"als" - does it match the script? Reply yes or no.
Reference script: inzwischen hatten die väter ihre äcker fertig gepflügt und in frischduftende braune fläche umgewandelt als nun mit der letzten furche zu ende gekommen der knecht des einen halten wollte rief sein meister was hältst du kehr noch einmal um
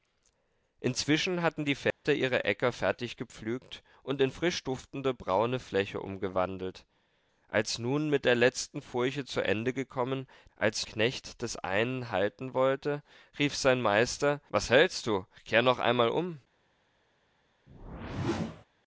yes